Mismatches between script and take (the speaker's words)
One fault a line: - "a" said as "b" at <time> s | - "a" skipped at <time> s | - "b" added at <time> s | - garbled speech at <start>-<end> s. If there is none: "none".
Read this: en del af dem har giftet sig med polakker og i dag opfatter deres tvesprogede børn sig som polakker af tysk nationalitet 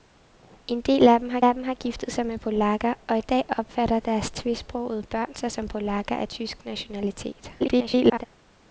- "af dem har" added at 1.4 s
- garbled speech at 7.6-8.3 s